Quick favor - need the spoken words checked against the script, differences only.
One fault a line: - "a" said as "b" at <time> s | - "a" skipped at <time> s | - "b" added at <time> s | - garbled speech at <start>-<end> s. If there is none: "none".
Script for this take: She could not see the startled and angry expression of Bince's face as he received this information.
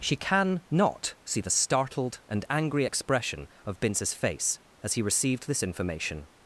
- "could" said as "can" at 0.1 s